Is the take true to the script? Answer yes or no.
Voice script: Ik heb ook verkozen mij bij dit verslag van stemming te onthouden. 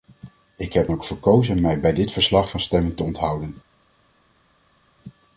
yes